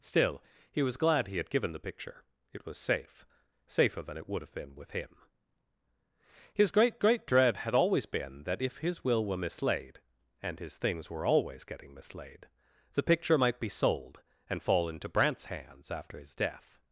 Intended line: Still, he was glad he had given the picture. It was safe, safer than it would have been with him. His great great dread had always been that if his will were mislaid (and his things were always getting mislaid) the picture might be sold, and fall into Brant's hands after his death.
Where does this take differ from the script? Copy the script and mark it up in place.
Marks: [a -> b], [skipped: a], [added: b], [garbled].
Still, he was glad he had given the picture. It was safe, safer than it would have been with him. His great great dread had always been that if his will were mislaid (and his things were always getting mislaid) the picture might be sold, and fall into Brant's hands after his death.